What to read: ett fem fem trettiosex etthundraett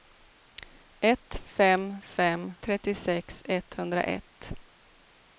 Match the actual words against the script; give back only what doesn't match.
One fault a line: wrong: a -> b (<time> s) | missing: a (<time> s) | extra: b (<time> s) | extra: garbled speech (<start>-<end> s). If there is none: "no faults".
no faults